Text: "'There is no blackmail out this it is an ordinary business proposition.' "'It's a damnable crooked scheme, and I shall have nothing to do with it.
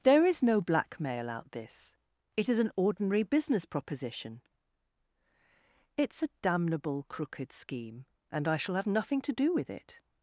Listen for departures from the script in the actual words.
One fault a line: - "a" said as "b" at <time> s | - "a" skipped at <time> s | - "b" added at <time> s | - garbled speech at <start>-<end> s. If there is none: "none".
none